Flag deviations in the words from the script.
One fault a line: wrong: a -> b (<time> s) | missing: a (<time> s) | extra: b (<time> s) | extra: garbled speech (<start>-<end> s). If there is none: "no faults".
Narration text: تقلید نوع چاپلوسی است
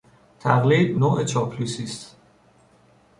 no faults